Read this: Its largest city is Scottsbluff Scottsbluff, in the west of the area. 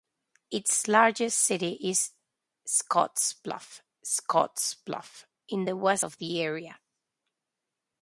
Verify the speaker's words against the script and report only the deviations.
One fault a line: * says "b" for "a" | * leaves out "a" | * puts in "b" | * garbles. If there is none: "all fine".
all fine